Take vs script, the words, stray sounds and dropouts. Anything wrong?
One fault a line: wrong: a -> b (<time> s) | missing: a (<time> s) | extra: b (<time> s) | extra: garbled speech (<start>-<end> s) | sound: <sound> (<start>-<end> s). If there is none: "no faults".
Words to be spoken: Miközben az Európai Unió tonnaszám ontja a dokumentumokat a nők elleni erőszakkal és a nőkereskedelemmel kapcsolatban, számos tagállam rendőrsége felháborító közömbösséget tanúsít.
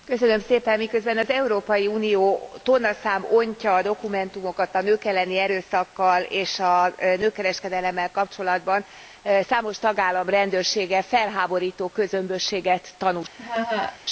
sound: laugh (13.4-14.0 s)